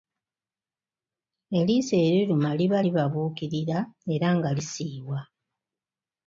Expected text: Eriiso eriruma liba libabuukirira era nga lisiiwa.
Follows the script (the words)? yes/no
yes